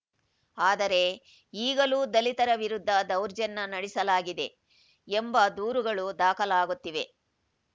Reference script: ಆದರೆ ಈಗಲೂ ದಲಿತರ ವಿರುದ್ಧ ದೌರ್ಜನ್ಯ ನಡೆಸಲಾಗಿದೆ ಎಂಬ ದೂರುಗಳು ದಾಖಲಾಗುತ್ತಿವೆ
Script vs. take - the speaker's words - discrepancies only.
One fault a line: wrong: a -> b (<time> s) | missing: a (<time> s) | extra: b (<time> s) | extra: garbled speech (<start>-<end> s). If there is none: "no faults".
no faults